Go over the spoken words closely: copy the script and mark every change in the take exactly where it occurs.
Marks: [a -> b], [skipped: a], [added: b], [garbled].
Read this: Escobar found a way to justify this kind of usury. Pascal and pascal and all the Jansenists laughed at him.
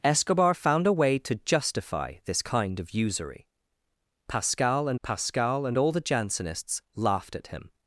Escobar found a way to justify this kind of usury. Pascal and pascal and all the Jansenists laughed at him.